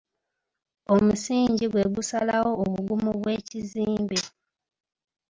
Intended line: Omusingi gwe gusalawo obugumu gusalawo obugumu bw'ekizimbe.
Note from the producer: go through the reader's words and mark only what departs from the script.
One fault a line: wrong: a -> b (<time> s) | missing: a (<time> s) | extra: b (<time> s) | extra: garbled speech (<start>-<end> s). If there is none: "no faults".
missing: gusalawo obugumu (3.1 s)